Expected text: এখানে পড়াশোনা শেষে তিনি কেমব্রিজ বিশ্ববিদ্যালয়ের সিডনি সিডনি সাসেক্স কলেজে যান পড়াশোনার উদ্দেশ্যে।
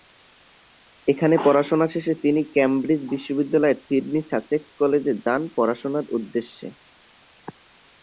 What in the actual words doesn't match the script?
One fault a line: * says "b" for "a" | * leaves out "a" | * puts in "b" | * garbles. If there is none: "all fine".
* leaves out "সিডনি"